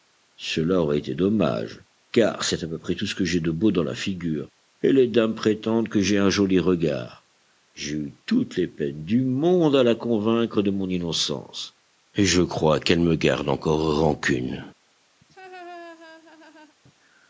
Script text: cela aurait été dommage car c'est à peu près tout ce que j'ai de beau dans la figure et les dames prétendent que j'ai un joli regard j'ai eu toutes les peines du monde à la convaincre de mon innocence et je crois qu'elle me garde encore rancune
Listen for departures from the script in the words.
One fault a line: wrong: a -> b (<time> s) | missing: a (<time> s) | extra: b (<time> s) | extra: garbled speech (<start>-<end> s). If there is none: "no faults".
no faults